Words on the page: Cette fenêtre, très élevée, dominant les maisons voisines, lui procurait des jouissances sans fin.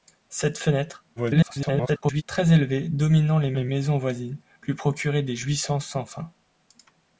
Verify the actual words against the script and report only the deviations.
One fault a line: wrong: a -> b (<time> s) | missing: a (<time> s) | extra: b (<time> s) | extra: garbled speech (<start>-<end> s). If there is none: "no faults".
extra: garbled speech (1.2-2.2 s)
extra: les (3.5 s)